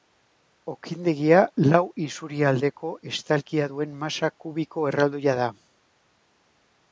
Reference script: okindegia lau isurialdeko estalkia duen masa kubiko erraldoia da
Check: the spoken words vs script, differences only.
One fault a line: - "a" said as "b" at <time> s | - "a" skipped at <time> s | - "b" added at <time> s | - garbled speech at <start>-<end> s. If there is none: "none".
none